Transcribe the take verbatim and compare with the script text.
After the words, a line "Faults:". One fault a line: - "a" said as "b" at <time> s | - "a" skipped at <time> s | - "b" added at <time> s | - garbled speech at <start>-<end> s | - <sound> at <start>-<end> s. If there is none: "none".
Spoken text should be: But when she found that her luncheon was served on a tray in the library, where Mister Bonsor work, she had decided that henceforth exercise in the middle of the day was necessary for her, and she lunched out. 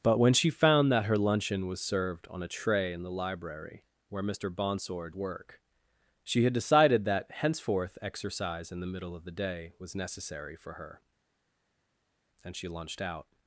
But when she found that her luncheon was served on a tray in the library, where Mister Bonsor work, she had decided that henceforth exercise in the middle of the day was necessary for her, and she lunched out.
Faults:
none